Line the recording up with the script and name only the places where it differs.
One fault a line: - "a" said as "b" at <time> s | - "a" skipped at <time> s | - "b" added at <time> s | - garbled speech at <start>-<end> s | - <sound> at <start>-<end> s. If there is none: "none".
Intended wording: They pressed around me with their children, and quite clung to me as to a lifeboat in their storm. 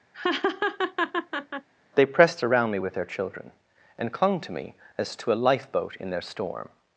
- laugh at 0.1-1.7 s
- "quite" skipped at 4.1 s